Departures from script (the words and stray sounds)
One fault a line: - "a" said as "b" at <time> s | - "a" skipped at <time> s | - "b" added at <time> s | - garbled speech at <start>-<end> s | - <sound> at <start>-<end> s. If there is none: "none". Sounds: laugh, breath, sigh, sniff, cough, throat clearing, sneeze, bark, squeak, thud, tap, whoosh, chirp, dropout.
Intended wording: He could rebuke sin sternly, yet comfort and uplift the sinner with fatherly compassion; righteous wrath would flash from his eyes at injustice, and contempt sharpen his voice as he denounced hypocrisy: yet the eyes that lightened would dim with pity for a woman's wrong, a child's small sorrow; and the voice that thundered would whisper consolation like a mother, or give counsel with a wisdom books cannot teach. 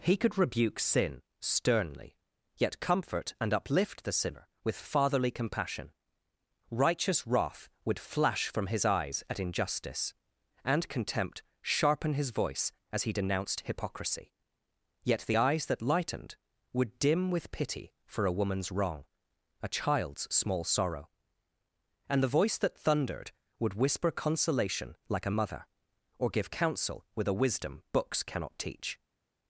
none